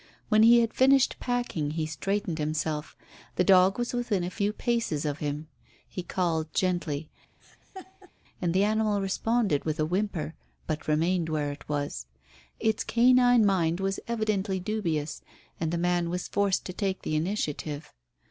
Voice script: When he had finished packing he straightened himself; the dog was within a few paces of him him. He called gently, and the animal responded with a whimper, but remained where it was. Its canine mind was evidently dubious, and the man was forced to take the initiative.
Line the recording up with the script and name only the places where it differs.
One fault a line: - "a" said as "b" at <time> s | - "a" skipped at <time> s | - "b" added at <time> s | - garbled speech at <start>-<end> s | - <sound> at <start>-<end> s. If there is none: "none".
- "him" skipped at 5.5 s
- laugh at 7.4-8.1 s